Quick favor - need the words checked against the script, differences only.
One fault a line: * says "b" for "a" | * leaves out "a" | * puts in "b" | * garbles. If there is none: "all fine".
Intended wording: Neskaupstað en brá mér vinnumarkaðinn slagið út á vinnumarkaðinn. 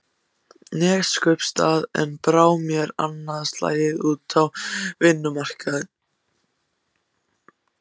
* says "annað" for "vinnumarkaðinn"